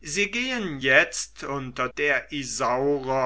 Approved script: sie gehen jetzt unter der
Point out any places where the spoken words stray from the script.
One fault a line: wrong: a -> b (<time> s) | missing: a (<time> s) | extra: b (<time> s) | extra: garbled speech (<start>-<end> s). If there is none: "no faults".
no faults